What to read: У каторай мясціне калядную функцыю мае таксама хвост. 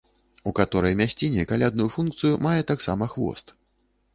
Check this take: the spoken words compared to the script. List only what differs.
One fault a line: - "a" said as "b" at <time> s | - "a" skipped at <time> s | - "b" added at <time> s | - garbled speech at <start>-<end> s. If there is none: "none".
none